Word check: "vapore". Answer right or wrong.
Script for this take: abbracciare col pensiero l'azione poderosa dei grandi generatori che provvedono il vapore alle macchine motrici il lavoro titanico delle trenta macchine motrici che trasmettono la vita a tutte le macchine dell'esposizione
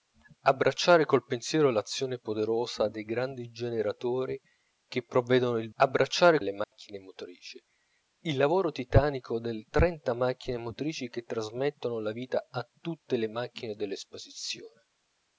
wrong